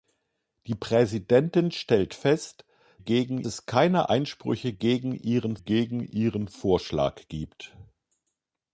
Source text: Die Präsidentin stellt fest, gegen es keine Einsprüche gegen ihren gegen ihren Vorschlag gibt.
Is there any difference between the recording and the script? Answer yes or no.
no